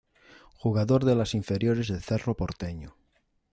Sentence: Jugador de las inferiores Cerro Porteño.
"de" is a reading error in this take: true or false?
false